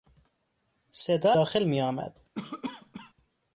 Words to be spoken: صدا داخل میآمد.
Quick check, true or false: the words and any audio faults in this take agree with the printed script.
false